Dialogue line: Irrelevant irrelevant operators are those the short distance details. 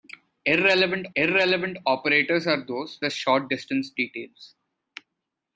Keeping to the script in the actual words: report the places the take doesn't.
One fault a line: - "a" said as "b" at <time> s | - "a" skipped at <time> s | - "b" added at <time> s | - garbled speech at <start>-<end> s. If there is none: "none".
none